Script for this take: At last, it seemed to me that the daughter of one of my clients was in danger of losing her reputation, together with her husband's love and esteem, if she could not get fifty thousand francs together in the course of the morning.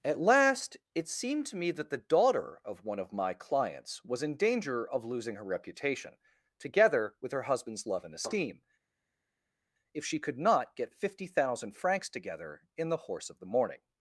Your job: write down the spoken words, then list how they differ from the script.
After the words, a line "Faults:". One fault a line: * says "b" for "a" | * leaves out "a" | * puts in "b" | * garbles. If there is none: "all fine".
At last, it seemed to me that the daughter of one of my clients was in danger of losing her reputation, together with her husband's love and esteem, if she could not get fifty thousand francs together in the horse of the morning.
Faults:
* says "horse" for "course"